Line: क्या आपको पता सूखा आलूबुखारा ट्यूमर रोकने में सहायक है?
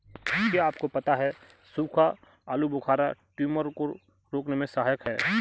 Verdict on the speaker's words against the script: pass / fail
fail